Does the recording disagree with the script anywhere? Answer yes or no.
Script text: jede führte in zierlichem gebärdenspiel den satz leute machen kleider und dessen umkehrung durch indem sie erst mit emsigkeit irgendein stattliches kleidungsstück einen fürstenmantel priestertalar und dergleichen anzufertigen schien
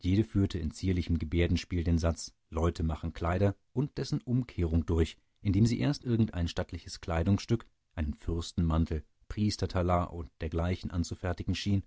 yes